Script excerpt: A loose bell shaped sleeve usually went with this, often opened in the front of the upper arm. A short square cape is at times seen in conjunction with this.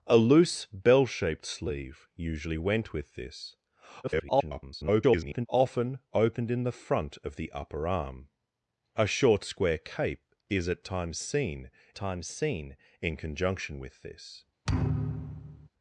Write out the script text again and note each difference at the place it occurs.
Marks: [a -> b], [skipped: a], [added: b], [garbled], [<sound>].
A loose bell shaped sleeve usually went with this, [garbled] often opened in the front of the upper arm. A short square cape is at times seen [added: times seen] in conjunction with this. [thud]